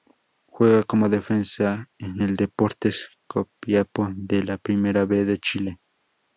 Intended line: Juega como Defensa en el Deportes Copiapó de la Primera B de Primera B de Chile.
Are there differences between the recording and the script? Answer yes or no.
yes